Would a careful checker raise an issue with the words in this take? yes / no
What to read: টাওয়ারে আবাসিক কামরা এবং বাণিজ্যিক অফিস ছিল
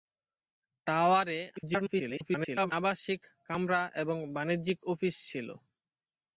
yes